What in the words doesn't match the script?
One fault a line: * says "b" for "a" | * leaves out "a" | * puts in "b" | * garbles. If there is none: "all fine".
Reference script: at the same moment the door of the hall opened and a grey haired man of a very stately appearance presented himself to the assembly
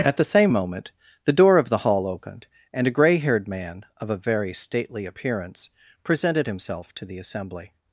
all fine